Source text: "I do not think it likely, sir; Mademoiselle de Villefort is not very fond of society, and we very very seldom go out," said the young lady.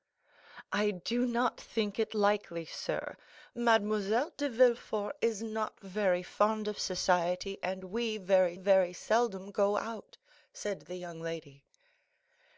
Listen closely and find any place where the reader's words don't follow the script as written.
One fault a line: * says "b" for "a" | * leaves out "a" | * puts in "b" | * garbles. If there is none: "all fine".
all fine